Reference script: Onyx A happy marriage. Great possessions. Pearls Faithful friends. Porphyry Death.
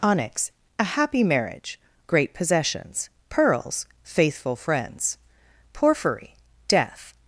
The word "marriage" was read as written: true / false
true